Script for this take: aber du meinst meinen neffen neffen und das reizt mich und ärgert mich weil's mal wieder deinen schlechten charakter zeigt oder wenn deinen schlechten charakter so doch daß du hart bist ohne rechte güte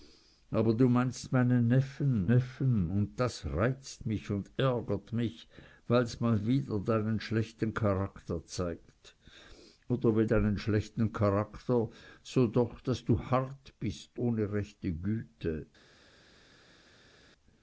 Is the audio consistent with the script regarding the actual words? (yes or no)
yes